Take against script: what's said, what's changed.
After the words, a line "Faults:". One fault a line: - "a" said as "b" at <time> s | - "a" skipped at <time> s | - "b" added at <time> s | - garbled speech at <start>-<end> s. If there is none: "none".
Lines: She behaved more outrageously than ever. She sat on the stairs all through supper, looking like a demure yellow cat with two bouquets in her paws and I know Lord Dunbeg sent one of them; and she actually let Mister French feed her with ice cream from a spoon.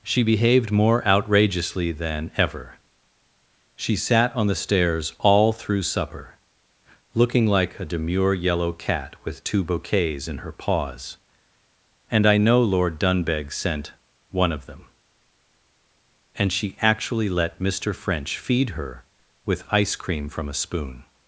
She behaved more outrageously than ever. She sat on the stairs all through supper, looking like a demure yellow cat with two bouquets in her paws and I know Lord Dunbeg sent one of them; and she actually let Mister French feed her with ice cream from a spoon.
Faults:
none